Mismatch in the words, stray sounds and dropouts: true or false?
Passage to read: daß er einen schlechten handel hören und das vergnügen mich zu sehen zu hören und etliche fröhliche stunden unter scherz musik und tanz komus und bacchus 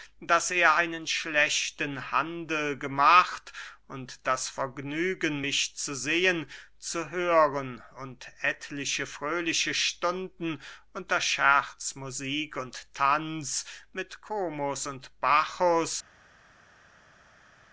true